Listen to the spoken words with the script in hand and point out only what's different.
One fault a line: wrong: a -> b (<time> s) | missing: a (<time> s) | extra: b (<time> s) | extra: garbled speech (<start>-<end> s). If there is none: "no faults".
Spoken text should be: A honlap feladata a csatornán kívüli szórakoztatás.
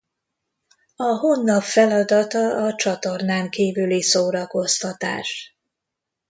no faults